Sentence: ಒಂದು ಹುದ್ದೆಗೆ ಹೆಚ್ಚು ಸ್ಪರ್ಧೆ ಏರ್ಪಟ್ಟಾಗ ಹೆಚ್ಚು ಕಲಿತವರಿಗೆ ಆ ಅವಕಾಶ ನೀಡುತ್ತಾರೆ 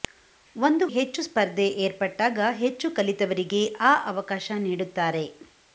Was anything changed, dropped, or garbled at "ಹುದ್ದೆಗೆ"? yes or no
yes